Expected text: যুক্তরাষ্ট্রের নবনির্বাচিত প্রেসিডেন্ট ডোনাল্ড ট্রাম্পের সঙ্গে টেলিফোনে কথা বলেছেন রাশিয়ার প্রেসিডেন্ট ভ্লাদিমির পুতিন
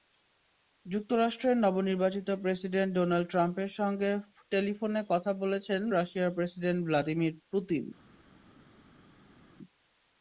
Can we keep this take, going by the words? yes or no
yes